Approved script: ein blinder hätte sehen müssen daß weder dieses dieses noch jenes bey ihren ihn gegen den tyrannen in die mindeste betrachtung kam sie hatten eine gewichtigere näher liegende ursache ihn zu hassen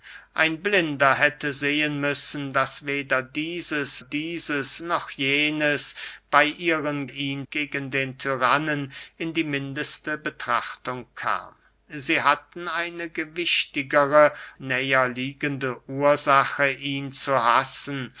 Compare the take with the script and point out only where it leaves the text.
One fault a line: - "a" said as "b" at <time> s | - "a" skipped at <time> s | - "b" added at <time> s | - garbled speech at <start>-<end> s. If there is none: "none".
none